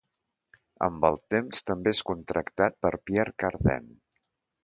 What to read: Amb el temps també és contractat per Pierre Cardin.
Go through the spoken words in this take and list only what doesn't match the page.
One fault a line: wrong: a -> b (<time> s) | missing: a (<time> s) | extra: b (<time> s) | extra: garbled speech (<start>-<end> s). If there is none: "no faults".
no faults